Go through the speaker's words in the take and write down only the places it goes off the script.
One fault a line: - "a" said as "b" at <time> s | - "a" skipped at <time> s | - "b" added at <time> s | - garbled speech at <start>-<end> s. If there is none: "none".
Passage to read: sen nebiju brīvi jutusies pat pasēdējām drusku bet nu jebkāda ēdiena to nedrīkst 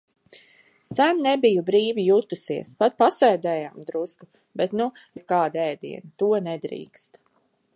none